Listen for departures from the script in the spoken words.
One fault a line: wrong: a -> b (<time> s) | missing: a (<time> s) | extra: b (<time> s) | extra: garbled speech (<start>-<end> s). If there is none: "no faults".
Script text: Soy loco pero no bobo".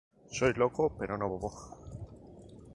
no faults